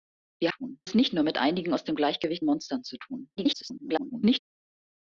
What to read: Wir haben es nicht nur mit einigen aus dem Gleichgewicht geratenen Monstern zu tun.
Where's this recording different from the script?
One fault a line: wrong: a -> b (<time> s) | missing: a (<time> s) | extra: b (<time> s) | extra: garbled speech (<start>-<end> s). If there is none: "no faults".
wrong: haben -> tun (0.5 s)
missing: geratenen (2.4 s)
extra: garbled speech (3.4-4.4 s)